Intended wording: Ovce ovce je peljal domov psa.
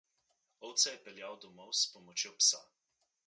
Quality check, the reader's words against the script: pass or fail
fail